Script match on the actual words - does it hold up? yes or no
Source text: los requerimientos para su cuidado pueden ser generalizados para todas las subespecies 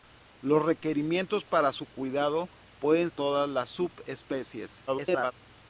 no